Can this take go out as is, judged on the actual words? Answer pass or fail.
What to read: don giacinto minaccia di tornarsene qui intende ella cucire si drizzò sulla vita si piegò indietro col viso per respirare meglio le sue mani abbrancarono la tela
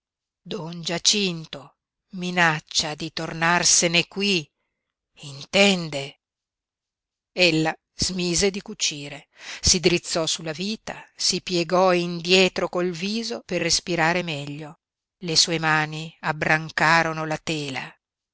fail